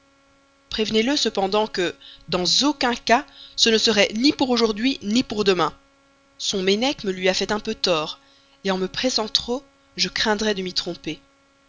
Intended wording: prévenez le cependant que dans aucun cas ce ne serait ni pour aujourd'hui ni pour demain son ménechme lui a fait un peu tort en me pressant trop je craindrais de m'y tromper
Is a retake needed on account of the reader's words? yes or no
no